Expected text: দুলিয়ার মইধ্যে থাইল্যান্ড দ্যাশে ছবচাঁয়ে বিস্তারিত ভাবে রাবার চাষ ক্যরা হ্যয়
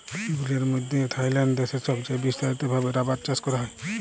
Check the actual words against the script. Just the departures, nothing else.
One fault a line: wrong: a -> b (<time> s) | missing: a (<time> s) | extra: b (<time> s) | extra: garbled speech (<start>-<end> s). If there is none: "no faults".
no faults